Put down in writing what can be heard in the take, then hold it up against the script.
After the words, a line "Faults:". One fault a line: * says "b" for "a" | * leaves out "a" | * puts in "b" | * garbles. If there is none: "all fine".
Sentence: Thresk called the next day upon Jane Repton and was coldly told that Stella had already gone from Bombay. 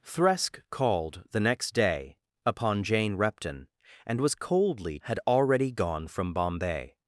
Thresk called the next day upon Jane Repton and was coldly had already gone from Bombay.
Faults:
* leaves out "told that Stella"